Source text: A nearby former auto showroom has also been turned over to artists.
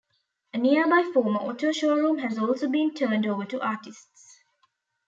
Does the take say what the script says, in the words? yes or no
yes